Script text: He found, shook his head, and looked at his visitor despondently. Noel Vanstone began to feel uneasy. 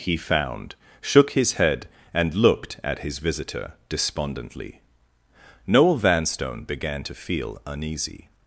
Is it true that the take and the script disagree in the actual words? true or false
false